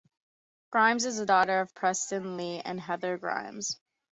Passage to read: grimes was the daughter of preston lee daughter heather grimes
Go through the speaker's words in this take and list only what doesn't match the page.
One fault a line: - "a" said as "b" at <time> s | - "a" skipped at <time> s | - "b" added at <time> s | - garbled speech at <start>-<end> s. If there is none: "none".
- "was" said as "is" at 1.1 s
- "daughter" said as "and" at 2.6 s